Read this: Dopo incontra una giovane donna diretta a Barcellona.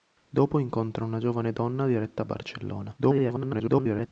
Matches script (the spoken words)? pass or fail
fail